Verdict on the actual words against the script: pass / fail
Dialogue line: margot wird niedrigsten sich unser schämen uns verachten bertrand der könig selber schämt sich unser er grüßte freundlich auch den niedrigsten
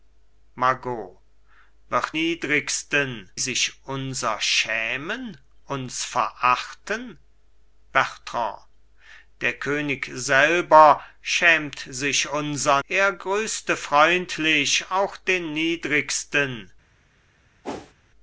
pass